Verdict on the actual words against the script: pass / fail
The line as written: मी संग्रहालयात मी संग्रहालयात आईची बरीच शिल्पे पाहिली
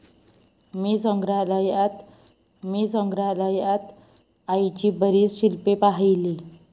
pass